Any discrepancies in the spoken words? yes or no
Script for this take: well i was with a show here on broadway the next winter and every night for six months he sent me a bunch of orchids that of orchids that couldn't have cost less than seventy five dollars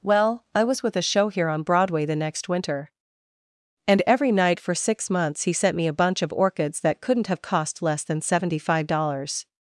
yes